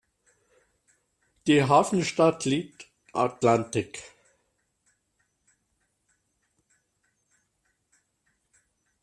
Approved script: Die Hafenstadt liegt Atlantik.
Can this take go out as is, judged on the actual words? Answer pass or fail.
pass